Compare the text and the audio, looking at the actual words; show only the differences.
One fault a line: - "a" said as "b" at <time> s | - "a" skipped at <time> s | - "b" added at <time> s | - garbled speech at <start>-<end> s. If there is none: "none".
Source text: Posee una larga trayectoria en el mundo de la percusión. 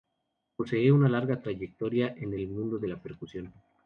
none